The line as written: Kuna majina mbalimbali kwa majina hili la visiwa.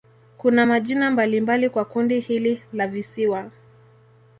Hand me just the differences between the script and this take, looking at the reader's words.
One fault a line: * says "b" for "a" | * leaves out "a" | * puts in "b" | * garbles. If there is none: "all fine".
* says "kundi" for "majina"